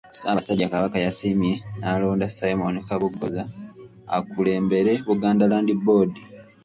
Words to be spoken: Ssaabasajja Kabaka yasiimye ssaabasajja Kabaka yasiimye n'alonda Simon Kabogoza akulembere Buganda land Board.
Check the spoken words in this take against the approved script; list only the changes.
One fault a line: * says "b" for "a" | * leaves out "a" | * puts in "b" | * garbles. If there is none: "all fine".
* leaves out "ssaabasajja Kabaka yasiimye"